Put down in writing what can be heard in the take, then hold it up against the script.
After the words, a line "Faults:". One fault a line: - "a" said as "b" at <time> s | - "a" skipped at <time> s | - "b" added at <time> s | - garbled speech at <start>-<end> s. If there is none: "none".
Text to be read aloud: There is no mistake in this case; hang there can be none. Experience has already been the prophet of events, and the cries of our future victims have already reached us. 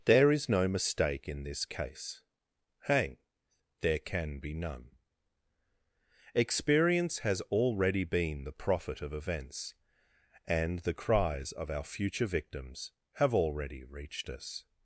There is no mistake in this case; hang there can be none. Experience has already been the prophet of events, and the cries of our future victims have already reached us.
Faults:
none